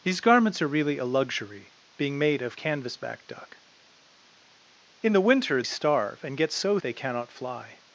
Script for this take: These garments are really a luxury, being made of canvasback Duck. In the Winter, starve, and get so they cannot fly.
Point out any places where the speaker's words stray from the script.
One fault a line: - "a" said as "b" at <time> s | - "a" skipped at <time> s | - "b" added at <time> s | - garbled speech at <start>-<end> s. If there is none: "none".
none